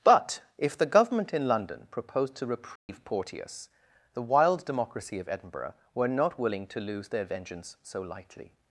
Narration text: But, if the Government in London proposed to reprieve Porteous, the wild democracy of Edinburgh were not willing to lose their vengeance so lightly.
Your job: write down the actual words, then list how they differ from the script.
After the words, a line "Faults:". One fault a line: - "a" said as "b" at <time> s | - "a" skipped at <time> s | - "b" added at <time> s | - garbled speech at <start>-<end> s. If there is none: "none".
But, if the Government in London proposed to reprieve Porteous, the wild democracy of Edinburgh were not willing to lose their vengeance so lightly.
Faults:
none